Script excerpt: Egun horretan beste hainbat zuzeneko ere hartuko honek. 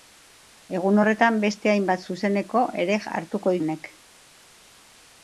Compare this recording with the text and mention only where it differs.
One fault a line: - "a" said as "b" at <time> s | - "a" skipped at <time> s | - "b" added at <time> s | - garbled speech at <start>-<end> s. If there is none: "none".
none